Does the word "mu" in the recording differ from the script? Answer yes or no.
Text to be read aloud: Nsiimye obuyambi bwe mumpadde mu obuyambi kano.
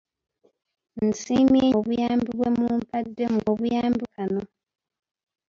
no